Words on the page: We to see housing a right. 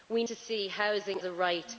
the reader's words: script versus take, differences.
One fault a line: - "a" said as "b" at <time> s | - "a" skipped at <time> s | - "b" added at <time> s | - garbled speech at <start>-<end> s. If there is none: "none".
none